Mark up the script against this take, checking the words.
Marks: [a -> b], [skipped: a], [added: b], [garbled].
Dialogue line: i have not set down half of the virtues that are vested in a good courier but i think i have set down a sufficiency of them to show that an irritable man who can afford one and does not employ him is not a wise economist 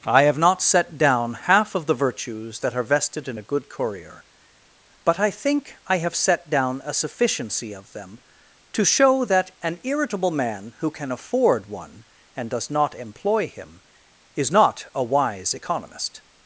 i have not set down half of the virtues that are vested in a good courier but i think i have set down a sufficiency of them to show that an irritable man who can afford one and does not employ him is not a wise economist